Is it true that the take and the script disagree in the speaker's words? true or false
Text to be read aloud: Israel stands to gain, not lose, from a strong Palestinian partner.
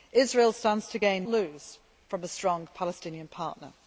true